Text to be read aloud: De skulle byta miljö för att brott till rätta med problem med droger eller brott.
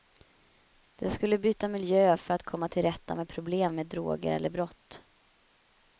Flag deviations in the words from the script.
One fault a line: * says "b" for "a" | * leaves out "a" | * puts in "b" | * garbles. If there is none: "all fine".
* says "komma" for "brott"